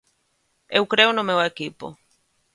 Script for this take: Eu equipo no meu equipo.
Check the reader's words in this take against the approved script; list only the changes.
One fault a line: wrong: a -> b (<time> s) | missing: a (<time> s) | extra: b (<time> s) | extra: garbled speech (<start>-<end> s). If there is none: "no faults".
wrong: equipo -> creo (0.9 s)